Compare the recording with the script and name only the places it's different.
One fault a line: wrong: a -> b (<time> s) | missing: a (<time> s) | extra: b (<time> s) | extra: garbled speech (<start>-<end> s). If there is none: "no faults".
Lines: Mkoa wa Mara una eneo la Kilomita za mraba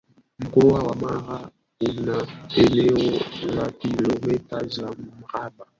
no faults